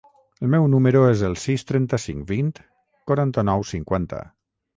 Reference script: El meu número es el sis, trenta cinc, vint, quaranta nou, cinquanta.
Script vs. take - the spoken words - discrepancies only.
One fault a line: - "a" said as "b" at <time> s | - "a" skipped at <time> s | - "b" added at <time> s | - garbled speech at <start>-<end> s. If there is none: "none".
none